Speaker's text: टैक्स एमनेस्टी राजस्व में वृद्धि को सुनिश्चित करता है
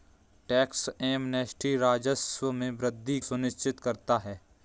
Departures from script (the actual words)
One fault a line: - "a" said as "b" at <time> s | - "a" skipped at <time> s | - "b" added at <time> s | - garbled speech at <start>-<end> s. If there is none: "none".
- "को" skipped at 3.2 s